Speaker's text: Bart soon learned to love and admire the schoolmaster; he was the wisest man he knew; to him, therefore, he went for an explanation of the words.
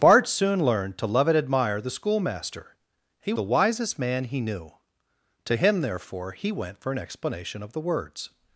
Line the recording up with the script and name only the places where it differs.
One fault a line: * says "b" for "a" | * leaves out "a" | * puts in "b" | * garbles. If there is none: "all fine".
* leaves out "was"